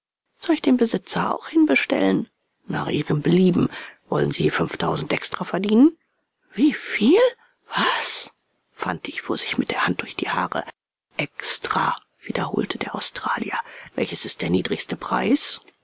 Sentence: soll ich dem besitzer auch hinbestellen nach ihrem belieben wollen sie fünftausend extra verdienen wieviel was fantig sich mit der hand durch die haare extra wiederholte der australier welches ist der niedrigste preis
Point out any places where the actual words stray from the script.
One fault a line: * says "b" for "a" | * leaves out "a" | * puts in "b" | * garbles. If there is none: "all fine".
* says "den" for "dem"
* puts in "fuhr"